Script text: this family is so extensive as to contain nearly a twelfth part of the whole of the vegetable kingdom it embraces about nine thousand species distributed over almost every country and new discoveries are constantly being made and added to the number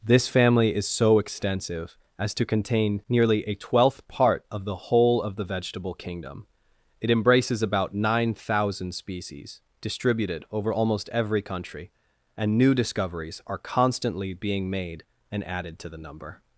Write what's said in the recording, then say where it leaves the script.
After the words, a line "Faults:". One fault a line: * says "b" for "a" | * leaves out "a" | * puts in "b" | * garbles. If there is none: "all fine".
this family is so extensive as to contain nearly a twelfth part of the whole of the vegetable kingdom it embraces about nine thousand species distributed over almost every country and new discoveries are constantly being made and added to the number
Faults:
all fine